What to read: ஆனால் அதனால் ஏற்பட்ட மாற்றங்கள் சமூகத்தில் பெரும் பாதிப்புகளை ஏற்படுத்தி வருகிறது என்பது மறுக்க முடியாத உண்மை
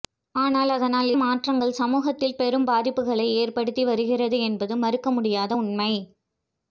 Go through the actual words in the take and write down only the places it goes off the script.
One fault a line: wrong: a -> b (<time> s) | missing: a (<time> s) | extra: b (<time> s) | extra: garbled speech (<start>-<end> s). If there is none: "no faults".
missing: ஏற்பட்ட (1.1 s)